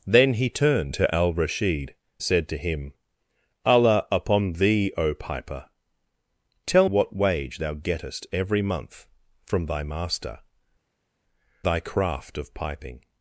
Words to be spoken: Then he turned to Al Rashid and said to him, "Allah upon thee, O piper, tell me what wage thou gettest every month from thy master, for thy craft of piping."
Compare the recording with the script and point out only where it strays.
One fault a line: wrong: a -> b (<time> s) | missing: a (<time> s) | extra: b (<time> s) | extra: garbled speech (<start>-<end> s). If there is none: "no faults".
missing: and (1.9 s)
missing: me (6.9 s)
missing: for (10.4 s)